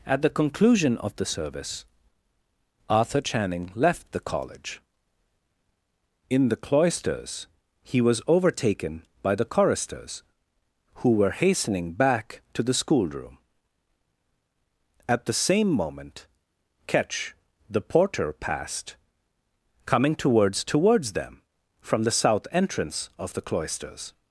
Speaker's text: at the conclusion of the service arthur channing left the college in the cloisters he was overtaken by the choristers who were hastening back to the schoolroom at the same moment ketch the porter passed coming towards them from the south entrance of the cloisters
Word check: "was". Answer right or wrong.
right